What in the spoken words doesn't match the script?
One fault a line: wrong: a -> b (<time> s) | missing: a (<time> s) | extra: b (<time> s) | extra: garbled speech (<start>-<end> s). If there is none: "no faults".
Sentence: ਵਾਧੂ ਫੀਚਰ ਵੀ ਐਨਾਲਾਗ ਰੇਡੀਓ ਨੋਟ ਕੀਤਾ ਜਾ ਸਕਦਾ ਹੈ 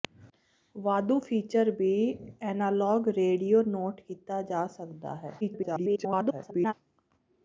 extra: garbled speech (5.4-6.7 s)